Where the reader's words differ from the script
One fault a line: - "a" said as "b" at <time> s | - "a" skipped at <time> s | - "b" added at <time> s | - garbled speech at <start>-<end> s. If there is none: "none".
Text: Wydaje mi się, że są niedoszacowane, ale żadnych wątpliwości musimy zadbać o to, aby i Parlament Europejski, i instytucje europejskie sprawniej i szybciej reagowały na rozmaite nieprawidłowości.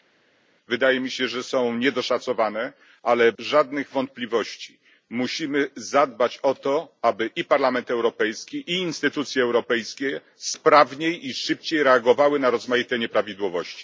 none